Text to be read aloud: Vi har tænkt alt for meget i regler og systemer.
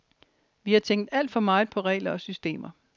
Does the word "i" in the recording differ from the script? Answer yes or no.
yes